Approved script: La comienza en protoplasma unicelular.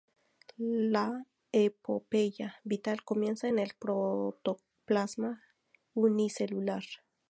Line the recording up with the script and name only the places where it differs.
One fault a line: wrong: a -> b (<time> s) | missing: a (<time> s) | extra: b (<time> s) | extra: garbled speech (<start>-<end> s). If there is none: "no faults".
extra: epopeya vital (1.5 s)
extra: el (3.6 s)